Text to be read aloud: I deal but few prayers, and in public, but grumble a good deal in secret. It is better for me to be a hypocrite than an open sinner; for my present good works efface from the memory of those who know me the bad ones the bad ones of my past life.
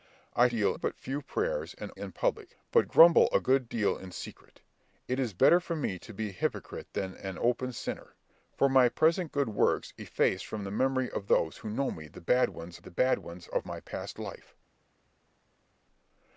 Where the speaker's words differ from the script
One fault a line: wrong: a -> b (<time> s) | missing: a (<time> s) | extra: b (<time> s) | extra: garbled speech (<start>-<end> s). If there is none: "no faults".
no faults